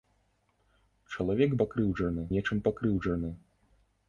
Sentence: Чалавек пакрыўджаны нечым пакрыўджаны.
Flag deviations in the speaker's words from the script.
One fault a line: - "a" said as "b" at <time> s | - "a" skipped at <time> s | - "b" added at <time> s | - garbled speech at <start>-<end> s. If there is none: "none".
none